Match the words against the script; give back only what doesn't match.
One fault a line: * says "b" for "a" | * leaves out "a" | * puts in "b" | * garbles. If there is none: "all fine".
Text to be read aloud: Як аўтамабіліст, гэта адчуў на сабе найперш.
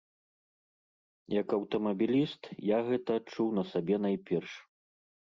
* puts in "я"